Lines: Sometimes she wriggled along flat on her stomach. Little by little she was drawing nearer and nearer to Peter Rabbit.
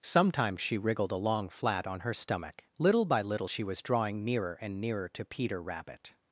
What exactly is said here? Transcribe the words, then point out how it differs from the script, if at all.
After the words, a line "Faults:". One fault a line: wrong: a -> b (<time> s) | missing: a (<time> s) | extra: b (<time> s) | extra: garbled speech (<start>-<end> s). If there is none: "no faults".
Sometimes she wriggled along flat on her stomach. Little by little she was drawing nearer and nearer to Peter Rabbit.
Faults:
no faults